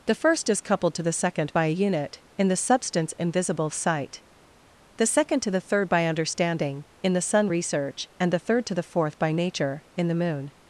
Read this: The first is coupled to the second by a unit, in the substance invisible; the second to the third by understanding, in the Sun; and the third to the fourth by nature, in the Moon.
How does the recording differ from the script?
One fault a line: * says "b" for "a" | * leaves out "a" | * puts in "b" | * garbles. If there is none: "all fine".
* puts in "sight"
* puts in "research"